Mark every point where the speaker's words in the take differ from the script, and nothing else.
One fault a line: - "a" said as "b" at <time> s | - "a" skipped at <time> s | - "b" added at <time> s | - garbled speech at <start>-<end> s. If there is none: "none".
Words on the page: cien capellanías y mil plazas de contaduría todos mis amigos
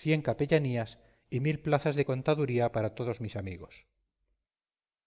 - "para" added at 2.7 s